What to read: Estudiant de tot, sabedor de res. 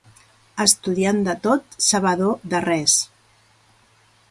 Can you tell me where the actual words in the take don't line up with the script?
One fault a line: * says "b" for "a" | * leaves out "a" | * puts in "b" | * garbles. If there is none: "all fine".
all fine